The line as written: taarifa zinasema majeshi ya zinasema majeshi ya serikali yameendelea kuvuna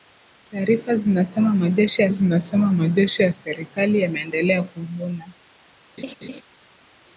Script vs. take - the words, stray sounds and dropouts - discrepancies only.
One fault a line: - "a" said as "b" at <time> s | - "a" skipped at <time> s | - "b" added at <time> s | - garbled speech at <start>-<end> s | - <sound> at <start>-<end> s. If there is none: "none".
- laugh at 6.0-6.4 s